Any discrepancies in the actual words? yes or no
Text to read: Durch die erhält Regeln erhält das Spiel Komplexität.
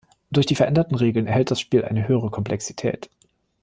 yes